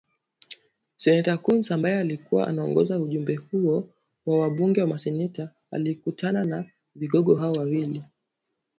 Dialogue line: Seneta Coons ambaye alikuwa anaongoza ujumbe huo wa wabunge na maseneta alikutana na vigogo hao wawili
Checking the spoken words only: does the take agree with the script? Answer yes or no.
yes